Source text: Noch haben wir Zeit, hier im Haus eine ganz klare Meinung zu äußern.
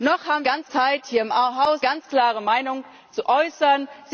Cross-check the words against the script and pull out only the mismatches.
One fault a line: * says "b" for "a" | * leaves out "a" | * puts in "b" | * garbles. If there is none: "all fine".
* says "ganz" for "wir"
* leaves out "eine"